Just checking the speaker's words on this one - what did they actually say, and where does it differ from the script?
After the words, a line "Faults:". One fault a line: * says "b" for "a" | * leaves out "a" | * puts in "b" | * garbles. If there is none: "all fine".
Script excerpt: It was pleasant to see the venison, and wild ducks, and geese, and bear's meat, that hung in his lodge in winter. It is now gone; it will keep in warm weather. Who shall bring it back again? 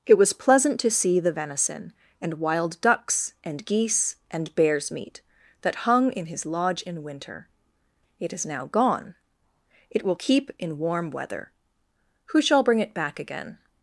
It was pleasant to see the venison, and wild ducks, and geese, and bear's meat, that hung in his lodge in winter. It is now gone; it will keep in warm weather. Who shall bring it back again?
Faults:
all fine